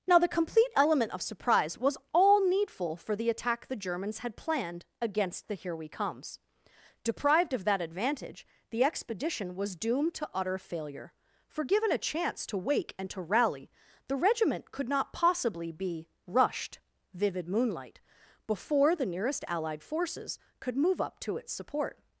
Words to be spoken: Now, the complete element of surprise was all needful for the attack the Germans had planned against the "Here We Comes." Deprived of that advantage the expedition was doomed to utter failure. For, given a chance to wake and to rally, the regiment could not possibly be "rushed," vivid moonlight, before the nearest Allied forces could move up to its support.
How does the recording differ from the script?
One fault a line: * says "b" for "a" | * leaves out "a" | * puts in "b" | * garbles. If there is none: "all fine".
all fine